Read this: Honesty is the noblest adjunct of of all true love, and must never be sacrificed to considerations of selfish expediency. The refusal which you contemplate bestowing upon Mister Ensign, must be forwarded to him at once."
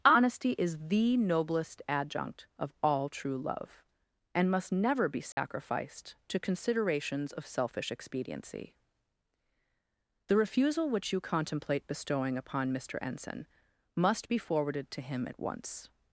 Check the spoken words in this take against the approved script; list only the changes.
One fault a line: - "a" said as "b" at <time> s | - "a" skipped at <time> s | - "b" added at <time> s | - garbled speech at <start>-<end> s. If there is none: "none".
- "of" skipped at 2.7 s